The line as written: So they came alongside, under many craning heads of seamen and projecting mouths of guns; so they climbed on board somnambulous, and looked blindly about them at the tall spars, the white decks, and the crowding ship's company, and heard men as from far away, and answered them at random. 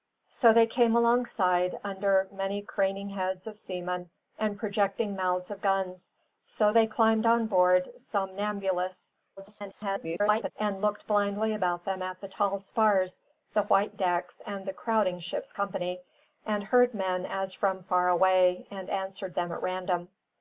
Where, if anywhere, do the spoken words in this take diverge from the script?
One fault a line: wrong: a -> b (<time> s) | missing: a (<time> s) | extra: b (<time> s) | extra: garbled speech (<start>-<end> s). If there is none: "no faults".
extra: garbled speech (9.4-10.5 s)